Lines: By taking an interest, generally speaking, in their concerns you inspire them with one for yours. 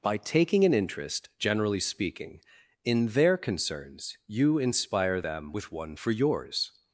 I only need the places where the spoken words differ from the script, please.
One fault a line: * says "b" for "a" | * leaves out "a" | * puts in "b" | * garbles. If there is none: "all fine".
all fine